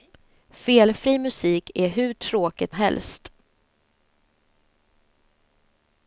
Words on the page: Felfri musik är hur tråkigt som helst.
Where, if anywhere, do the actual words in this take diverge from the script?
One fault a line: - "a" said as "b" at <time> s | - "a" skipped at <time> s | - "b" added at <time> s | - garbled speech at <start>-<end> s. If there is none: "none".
- "som" skipped at 2.8 s